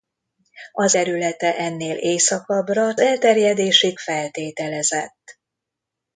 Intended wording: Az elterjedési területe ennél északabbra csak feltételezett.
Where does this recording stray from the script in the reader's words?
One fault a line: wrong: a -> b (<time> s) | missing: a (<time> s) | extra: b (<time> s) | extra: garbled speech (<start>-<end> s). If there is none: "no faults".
missing: elterjedési (0.9 s)
wrong: csak -> elterjedési (3.0 s)